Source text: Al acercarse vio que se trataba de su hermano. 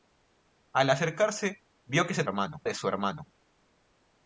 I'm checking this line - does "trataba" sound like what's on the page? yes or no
no